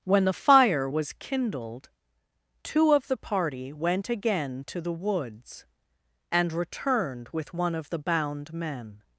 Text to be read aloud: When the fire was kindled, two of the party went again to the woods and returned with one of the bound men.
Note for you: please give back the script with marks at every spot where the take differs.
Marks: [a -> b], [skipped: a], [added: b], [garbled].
When the fire was kindled, two of the party went again to the woods and returned with one of the bound men.